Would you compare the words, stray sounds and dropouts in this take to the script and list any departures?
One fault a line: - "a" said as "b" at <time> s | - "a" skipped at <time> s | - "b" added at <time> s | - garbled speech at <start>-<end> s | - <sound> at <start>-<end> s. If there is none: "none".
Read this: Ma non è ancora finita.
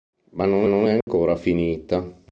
- "non" added at 0.6 s
- dropout at 1.0-1.1 s